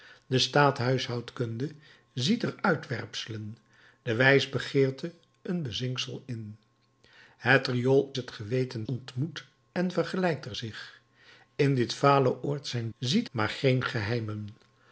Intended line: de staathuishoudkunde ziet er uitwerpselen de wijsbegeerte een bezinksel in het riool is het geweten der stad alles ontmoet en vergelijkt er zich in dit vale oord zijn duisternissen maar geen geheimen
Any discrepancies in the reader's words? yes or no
yes